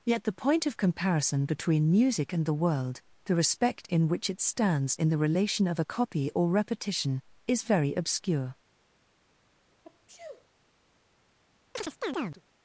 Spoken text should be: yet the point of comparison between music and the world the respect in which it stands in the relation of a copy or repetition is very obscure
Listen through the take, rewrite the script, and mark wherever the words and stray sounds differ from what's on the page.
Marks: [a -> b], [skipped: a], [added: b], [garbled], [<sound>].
yet the point of comparison between music and the world the respect in which it stands in the relation of a copy or repetition is very obscure [sneeze] [chirp]